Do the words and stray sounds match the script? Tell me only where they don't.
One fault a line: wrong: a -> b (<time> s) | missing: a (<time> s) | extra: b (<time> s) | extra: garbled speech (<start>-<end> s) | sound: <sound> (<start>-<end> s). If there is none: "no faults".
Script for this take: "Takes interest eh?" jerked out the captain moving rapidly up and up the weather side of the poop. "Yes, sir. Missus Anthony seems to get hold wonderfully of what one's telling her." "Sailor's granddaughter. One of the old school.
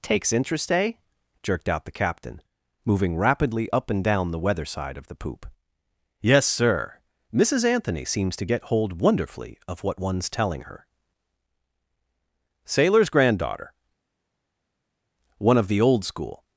wrong: up -> down (4.0 s)